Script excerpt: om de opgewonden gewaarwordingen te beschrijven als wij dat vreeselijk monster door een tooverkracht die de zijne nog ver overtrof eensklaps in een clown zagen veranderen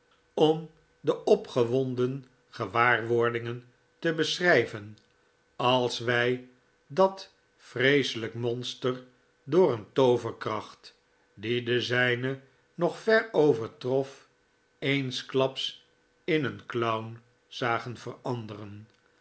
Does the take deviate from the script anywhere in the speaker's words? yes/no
no